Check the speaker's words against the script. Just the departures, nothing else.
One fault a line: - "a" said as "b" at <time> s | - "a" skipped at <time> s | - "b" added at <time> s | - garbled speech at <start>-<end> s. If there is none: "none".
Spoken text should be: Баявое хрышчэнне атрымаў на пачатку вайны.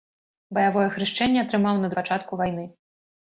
none